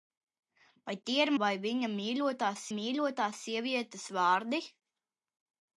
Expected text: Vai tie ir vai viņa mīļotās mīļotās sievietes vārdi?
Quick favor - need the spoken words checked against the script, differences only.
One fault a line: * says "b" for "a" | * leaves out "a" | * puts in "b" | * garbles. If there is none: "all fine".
all fine